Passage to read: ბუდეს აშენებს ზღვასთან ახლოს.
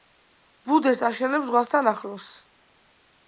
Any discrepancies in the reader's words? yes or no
no